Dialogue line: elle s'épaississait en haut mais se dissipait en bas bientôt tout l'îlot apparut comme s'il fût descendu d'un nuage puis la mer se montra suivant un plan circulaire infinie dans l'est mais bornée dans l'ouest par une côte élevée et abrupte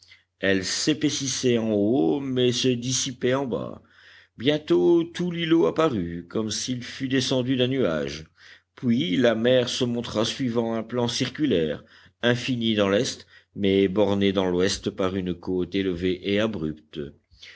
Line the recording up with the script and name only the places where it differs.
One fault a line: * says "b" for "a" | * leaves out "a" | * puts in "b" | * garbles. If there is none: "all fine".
all fine